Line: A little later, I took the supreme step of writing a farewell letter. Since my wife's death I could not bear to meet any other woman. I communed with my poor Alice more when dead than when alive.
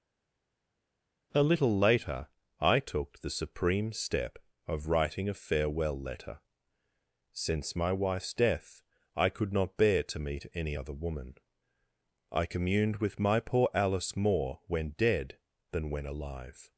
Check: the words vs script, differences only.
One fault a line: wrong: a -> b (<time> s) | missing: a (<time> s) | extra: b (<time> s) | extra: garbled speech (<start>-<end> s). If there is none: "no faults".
no faults